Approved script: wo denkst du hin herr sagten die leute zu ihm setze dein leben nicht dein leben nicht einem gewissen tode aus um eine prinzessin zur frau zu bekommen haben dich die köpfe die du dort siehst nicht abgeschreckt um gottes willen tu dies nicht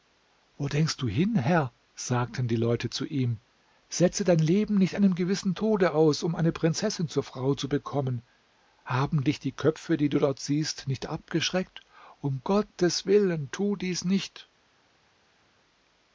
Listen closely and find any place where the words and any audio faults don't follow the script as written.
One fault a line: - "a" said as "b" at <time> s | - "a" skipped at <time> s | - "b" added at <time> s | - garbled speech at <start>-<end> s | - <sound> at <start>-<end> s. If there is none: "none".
- "dein leben nicht" skipped at 5.0 s